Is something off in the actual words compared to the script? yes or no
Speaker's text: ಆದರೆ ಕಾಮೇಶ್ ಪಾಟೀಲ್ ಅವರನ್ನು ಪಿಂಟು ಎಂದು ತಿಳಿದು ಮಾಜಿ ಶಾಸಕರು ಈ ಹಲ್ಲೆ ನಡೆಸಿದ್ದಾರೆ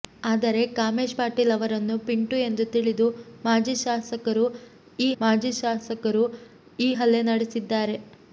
yes